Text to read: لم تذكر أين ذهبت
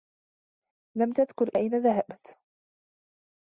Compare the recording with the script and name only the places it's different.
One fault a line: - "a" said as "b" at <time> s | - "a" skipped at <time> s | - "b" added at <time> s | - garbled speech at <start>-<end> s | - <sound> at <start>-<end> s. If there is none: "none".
none